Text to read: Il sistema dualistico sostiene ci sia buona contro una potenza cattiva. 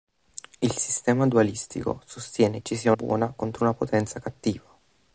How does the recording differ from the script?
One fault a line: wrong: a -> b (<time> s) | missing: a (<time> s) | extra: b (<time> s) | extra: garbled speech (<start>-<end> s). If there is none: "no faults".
no faults